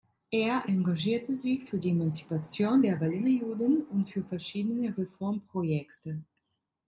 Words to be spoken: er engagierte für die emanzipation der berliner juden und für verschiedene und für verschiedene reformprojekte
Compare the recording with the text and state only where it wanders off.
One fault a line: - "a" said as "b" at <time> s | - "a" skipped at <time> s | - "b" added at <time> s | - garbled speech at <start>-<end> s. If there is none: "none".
- "sich" added at 1.4 s
- "und für verschiedene" skipped at 4.9 s